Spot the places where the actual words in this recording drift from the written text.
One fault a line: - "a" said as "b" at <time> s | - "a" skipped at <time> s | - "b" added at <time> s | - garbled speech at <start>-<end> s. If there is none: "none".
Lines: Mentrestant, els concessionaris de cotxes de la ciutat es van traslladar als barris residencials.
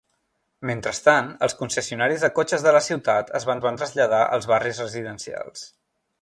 - "van" added at 3.7 s